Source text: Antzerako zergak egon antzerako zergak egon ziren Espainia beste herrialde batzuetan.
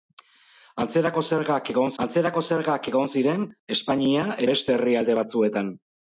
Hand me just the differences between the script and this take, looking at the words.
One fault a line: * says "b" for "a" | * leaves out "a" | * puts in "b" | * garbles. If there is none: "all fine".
all fine